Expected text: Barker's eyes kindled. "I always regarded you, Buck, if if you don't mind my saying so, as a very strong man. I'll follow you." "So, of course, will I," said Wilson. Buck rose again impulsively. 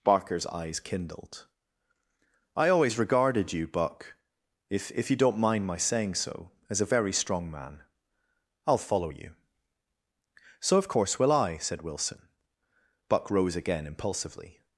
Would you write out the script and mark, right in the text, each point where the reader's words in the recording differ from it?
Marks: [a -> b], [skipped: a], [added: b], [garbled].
Barker's eyes kindled. "I always regarded you, Buck, if if you don't mind my saying so, as a very strong man. I'll follow you." "So, of course, will I," said Wilson. Buck rose again impulsively.